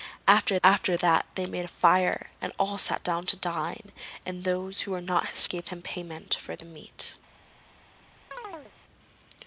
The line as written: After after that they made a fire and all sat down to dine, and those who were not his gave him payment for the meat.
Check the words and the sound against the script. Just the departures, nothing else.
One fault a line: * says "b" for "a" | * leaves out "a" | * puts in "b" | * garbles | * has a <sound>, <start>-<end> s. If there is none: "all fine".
* has a chirp, 8.3-8.7 s